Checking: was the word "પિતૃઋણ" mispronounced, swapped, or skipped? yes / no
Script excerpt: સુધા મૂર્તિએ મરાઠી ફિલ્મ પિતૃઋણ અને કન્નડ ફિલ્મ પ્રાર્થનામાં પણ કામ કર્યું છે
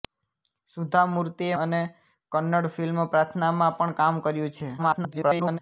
yes